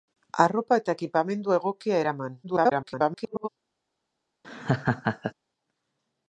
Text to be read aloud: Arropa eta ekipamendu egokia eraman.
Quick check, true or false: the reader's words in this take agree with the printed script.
false